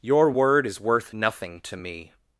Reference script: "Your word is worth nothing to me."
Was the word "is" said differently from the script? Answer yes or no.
no